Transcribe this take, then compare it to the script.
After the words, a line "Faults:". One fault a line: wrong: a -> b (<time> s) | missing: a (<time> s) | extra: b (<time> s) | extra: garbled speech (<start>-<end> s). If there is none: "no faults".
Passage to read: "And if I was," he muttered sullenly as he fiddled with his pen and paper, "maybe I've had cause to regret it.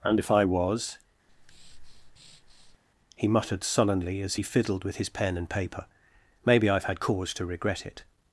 "And if I was," he muttered sullenly as he fiddled with his pen and paper, "maybe I've had cause to regret it.
Faults:
no faults